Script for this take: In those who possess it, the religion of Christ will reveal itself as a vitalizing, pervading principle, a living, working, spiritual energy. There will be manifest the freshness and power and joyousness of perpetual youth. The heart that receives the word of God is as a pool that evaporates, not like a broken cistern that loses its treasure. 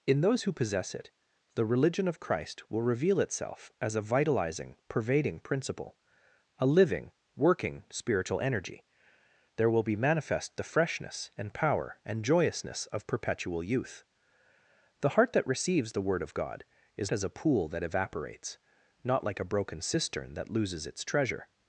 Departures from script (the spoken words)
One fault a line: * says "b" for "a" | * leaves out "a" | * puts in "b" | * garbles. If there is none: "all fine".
all fine